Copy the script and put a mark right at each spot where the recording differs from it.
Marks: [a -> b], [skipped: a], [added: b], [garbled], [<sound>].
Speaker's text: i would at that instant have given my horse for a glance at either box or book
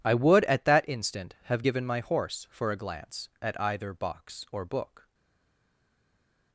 i would at that instant have given my horse for a glance at either box or book